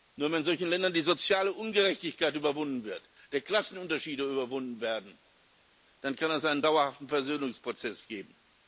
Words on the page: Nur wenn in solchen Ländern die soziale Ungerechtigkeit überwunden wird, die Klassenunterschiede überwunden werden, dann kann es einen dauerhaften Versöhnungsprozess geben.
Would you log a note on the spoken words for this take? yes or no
no